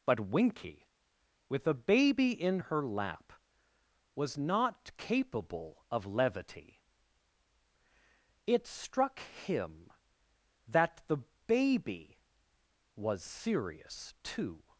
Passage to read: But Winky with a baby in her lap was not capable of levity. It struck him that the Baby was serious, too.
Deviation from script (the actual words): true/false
false